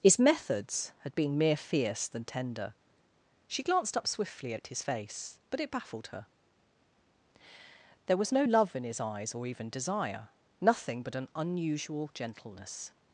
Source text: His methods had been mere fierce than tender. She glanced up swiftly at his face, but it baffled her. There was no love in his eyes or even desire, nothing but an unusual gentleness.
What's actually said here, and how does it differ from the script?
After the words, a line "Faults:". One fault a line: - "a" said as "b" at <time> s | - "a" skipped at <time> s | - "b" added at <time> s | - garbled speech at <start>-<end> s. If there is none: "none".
His methods had been mere fierce than tender. She glanced up swiftly at his face, but it baffled her. There was no love in his eyes or even desire, nothing but an unusual gentleness.
Faults:
none